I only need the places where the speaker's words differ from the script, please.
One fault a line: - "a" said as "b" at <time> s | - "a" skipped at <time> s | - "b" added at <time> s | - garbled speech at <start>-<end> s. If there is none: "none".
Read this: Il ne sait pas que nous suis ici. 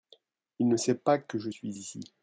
- "nous" said as "je" at 1.4 s